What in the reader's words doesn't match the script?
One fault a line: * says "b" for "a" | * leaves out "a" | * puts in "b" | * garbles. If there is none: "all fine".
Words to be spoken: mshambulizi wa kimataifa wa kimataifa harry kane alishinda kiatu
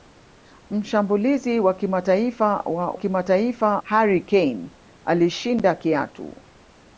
all fine